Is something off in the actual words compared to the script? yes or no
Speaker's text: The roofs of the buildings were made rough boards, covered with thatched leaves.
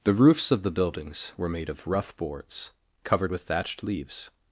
yes